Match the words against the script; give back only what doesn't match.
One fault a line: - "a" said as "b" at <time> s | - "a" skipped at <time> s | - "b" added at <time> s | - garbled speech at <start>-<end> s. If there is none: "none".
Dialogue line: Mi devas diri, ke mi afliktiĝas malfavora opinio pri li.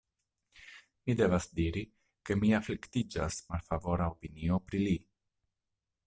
none